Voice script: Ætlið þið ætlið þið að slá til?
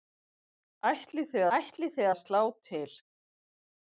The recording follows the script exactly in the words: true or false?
true